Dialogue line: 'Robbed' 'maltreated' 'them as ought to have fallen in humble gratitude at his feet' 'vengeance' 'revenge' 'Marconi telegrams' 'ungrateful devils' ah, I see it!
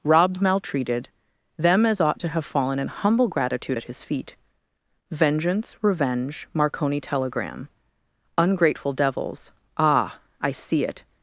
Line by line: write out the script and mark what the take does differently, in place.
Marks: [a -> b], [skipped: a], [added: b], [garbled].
'Robbed' 'maltreated' 'them as ought to have fallen in humble gratitude at his feet' 'vengeance' 'revenge' 'Marconi [telegrams' -> telegram] 'ungrateful devils' ah, I see it!